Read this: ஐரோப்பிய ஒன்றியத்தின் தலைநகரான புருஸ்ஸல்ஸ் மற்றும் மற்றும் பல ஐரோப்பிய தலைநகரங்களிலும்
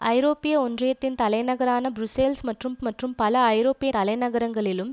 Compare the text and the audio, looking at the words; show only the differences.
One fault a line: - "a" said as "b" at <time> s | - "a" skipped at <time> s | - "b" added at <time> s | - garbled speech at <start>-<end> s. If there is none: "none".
none